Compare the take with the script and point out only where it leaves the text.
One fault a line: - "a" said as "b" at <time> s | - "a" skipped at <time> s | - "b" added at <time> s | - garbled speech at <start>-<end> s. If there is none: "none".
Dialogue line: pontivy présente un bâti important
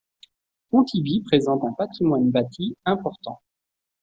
- "patrimoine" added at 1.7 s